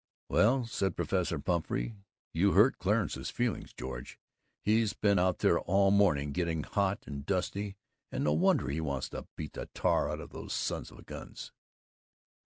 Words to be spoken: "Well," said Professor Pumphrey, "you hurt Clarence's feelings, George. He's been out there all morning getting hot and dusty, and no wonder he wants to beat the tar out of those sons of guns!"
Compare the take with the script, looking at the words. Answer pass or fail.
pass